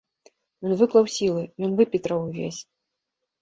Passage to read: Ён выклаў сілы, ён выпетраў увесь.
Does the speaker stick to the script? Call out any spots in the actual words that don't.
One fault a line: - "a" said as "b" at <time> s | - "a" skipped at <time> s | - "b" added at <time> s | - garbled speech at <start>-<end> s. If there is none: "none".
none